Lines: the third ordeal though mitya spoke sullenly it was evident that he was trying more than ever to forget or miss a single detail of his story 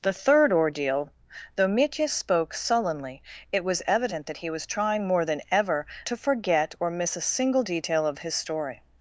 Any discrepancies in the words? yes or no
no